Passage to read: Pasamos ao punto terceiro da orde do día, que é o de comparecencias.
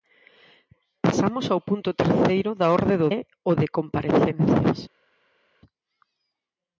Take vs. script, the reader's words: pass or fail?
fail